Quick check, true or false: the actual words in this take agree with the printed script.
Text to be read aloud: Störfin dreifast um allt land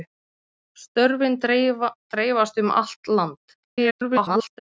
false